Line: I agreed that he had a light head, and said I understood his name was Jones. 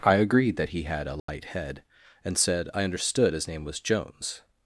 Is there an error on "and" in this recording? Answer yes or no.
no